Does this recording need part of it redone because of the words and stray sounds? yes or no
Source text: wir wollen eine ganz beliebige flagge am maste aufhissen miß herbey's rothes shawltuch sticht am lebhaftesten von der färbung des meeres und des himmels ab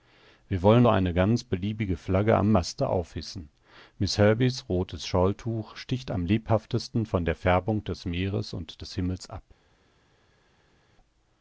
no